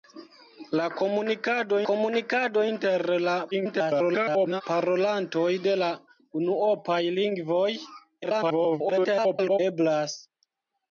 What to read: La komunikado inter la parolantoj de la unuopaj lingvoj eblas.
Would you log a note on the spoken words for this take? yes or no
yes